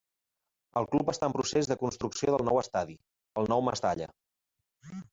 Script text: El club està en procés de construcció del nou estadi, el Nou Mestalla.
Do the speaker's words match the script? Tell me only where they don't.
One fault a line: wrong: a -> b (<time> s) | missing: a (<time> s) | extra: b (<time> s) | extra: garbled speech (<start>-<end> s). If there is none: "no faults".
no faults